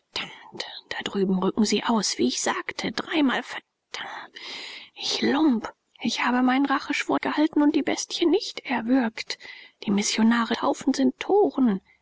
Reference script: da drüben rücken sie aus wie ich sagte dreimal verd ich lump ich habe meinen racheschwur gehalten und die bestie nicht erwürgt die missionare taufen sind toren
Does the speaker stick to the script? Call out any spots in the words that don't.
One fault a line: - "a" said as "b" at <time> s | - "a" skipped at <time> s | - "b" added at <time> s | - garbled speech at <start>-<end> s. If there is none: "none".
none